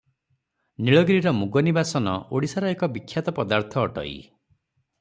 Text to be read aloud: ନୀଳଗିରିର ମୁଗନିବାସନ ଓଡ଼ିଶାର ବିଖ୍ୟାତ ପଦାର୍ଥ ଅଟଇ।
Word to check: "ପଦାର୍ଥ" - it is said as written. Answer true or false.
true